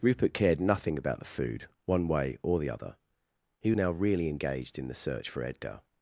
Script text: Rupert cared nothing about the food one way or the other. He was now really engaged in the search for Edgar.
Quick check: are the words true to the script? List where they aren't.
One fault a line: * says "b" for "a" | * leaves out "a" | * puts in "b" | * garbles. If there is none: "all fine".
* leaves out "was"